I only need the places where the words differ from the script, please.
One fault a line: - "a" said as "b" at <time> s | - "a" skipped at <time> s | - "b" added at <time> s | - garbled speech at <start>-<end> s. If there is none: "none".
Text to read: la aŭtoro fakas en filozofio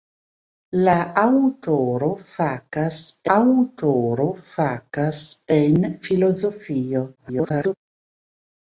- "aŭtoro fakas" added at 3.4 s
- garbled speech at 7.2-7.8 s